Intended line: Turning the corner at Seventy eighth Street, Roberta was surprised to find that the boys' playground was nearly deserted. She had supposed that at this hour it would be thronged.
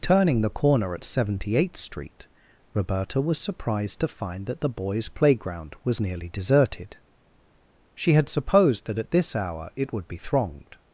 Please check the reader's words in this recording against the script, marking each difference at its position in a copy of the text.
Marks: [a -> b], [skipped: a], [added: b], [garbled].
Turning the corner at Seventy eighth Street, Roberta was surprised to find that the boys' playground was nearly deserted. She had supposed that at this hour it would be thronged.